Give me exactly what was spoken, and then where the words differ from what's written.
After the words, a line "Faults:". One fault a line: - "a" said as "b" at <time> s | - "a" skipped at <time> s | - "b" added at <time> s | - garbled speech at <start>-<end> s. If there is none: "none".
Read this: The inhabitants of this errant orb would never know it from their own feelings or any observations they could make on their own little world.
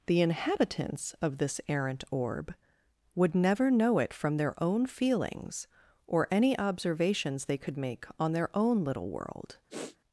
The inhabitants of this errant orb would never know it from their own feelings or any observations they could make on their own little world.
Faults:
none